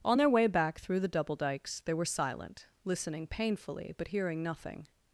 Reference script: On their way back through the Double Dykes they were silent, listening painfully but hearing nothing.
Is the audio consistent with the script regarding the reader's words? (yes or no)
yes